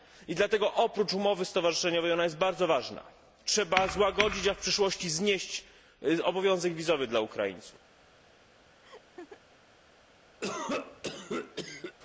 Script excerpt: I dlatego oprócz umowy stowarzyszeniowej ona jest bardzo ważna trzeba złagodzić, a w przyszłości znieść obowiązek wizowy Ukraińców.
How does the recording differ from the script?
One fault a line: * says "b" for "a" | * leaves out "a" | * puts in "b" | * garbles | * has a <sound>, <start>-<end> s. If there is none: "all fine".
* puts in "dla"
* has a laugh, 8.8-9.4 s
* has a cough, 10.4-12.0 s